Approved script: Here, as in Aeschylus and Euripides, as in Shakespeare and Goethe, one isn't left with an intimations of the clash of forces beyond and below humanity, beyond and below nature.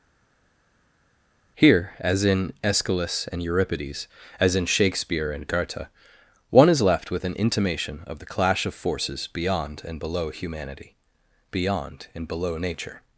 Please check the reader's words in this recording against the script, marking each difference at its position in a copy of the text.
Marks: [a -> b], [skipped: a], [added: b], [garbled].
Here, as in Aeschylus and Euripides, as in Shakespeare and Goethe, one [isn't -> is] left with an [intimations -> intimation] of the clash of forces beyond and below humanity, beyond and below nature.